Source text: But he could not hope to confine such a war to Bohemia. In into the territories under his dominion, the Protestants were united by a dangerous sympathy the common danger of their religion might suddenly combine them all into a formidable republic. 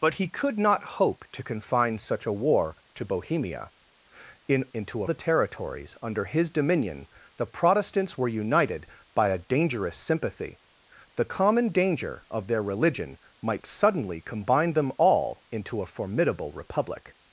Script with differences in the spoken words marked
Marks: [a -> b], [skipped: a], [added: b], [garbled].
But he could not hope to confine such a war to Bohemia. In into the territories under his dominion, the Protestants were united by a dangerous sympathy the common danger of their religion might suddenly combine them all into a formidable republic.